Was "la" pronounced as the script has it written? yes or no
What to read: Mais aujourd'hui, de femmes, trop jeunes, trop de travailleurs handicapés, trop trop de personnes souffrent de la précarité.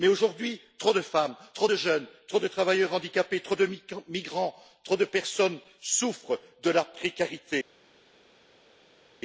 yes